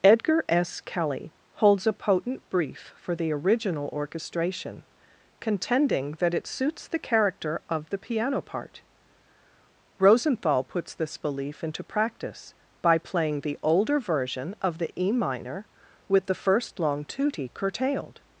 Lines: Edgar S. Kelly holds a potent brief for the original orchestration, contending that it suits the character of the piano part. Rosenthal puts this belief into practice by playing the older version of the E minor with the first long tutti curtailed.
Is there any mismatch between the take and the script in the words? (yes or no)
no